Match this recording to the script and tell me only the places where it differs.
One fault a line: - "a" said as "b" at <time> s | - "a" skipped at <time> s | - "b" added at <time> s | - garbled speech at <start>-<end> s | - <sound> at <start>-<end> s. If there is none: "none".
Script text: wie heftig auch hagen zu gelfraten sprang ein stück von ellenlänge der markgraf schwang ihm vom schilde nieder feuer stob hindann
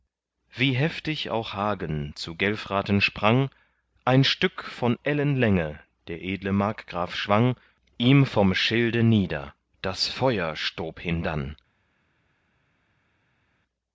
- "edle" added at 6.2 s
- "das" added at 9.8 s